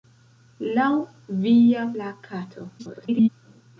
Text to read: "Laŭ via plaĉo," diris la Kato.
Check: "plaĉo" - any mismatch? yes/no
yes